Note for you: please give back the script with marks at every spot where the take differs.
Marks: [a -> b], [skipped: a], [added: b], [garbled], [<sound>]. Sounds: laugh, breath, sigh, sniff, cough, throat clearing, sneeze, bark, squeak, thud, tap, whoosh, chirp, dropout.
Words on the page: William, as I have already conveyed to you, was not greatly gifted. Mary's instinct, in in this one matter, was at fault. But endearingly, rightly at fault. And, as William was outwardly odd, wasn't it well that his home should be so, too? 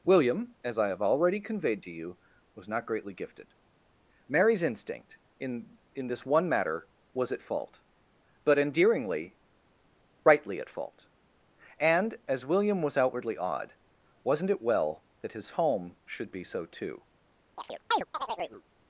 William, as I have already conveyed to you, was not greatly gifted. Mary's instinct, in in this one matter, was at fault. But endearingly, rightly at fault. And, as William was outwardly odd, wasn't it well that his home should be so, too? [chirp]